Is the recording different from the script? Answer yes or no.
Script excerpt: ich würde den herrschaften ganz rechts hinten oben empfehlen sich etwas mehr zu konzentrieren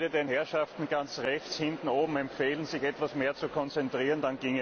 no